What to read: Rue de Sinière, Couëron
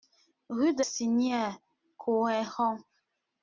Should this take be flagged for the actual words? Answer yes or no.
no